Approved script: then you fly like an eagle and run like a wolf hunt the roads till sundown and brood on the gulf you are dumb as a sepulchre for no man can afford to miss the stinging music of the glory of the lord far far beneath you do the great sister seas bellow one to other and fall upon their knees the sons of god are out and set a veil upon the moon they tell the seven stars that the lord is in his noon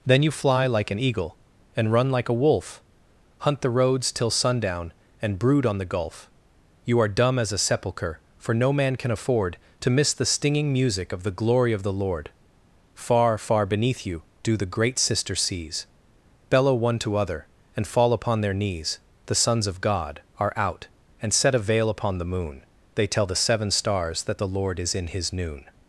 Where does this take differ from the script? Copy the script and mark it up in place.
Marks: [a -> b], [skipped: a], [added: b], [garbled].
then you fly like an eagle and run like a wolf hunt the roads till sundown and brood on the gulf you are dumb as a sepulchre for no man can afford to miss the stinging music of the glory of the lord far far beneath you do the great sister seas bellow one to other and fall upon their knees the sons of god are out and set a veil upon the moon they tell the seven stars that the lord is in his noon